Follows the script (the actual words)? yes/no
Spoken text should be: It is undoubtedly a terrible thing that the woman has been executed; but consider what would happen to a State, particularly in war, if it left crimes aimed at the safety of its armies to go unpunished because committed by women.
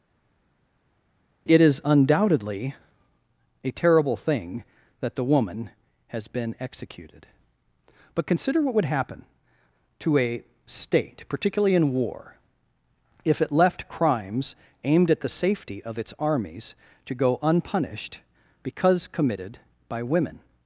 yes